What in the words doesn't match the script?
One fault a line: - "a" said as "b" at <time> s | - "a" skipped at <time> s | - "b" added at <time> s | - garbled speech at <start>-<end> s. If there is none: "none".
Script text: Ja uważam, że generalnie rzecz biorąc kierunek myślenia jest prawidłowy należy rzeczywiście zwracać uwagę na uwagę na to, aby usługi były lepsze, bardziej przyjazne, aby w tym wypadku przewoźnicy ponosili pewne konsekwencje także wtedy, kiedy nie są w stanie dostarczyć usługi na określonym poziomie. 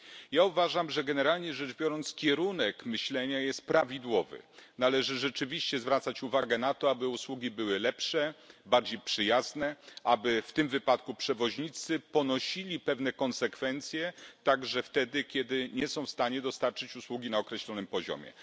- "uwagę na" skipped at 6.7 s